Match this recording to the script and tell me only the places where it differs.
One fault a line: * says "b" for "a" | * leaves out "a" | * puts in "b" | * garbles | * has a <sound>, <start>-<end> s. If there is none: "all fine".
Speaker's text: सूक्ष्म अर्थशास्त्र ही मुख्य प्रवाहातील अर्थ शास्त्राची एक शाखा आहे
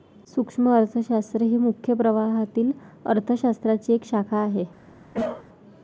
* has a cough, 5.1-5.5 s